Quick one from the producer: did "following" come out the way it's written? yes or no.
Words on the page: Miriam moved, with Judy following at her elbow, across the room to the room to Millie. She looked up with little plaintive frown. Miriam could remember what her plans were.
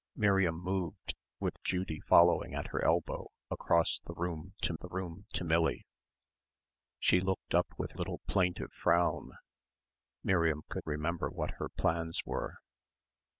yes